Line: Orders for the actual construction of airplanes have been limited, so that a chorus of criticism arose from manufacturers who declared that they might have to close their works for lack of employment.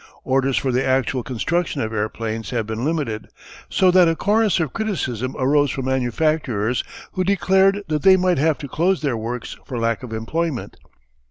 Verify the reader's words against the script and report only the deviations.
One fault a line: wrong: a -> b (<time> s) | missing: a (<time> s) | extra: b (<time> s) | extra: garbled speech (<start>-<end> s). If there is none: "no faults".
no faults